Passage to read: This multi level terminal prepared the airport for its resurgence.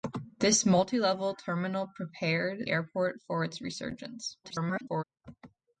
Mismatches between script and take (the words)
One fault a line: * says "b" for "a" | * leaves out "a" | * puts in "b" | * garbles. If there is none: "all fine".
* leaves out "the"
* garbles